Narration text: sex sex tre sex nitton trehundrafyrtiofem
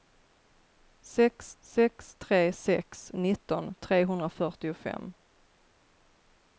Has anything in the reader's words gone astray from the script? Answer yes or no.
no